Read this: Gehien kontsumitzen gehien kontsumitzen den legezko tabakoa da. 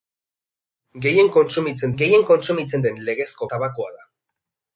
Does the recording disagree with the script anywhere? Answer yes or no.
no